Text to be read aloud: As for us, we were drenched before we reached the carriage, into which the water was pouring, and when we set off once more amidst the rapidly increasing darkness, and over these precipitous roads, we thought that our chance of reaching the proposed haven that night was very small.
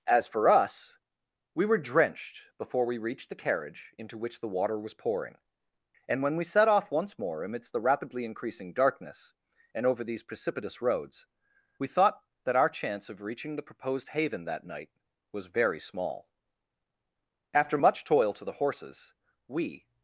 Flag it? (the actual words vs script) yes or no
yes